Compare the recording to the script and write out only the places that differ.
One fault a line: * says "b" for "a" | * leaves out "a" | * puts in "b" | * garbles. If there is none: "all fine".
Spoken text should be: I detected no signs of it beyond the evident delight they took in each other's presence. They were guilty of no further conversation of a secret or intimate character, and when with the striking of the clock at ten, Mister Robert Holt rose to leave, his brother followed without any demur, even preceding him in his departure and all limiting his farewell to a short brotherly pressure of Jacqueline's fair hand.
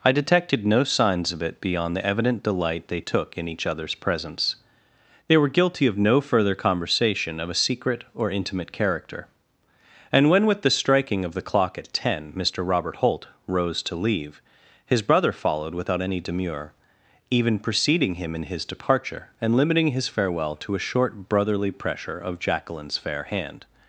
* leaves out "all"